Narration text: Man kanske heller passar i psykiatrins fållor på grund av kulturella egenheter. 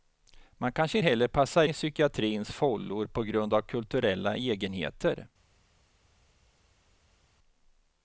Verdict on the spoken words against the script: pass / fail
pass